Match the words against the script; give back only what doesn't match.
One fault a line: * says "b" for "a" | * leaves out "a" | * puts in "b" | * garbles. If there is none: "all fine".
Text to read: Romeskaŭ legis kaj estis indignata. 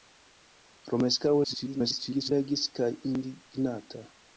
* garbles
* leaves out "estis"